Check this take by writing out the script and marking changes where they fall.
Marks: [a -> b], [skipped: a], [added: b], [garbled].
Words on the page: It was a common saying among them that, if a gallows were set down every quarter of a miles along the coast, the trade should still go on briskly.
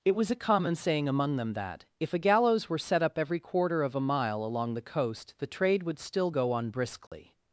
It was a common saying among them that, if a gallows were set [down -> up] every quarter of a [miles -> mile] along the coast, the trade [should -> would] still go on briskly.